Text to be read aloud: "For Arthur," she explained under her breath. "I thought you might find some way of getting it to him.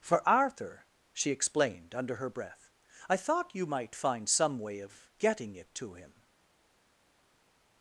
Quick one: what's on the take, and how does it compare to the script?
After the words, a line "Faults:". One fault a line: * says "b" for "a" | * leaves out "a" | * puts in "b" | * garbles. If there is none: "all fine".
"For Arthur," she explained under her breath. "I thought you might find some way of getting it to him.
Faults:
all fine